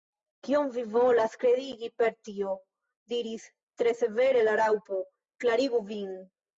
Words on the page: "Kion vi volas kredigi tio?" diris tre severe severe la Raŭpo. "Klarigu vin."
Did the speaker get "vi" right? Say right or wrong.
right